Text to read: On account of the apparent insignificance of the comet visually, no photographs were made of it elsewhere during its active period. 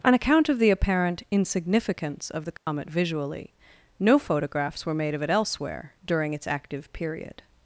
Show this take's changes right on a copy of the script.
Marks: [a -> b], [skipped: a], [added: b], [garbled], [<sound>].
On account of the apparent insignificance of the comet [dropout] visually, no photographs were made of it elsewhere during its active period.